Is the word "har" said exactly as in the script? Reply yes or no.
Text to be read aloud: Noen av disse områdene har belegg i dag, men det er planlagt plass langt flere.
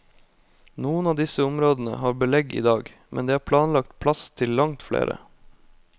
yes